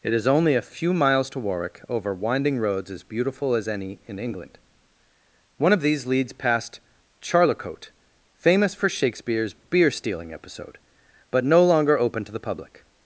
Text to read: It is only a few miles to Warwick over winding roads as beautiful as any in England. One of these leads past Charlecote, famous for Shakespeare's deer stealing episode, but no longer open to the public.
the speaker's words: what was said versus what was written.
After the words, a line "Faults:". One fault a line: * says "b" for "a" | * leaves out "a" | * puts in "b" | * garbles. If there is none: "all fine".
It is only a few miles to Warwick over winding roads as beautiful as any in England. One of these leads past Charlecote, famous for Shakespeare's beer stealing episode, but no longer open to the public.
Faults:
* says "beer" for "deer"